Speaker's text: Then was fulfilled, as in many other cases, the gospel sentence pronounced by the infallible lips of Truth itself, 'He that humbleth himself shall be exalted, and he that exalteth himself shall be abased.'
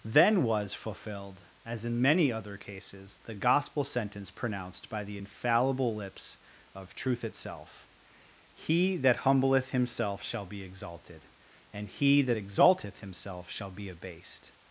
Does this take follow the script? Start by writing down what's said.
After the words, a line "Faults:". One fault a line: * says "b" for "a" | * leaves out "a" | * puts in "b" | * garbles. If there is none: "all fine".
Then was fulfilled, as in many other cases, the gospel sentence pronounced by the infallible lips of Truth itself, 'He that humbleth himself shall be exalted, and he that exalteth himself shall be abased.'
Faults:
all fine